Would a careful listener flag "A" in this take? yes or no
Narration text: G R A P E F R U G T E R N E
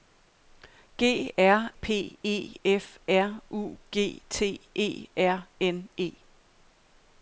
yes